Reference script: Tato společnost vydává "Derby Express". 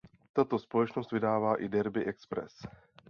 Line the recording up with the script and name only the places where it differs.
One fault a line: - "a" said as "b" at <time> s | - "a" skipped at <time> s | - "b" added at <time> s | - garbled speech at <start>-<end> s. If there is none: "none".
- "i" added at 1.6 s